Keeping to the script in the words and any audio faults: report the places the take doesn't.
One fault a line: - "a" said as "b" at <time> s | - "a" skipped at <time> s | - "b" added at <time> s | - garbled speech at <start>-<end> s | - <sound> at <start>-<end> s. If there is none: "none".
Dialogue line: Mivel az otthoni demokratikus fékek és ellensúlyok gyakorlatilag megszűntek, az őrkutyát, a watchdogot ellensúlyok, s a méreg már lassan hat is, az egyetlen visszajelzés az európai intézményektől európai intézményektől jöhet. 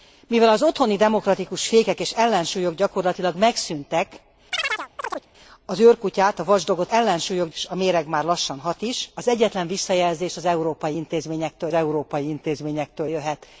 - chirp at 4.5-5.3 s